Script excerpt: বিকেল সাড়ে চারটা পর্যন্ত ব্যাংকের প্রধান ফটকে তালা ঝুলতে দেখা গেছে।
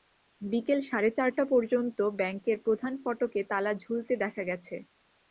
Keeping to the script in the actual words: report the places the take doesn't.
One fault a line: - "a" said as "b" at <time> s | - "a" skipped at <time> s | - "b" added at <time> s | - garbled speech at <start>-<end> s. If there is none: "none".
none